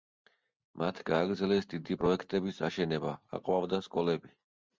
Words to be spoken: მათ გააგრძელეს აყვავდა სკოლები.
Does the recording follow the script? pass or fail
fail